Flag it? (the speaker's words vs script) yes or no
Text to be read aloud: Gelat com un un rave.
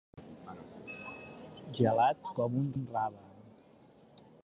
no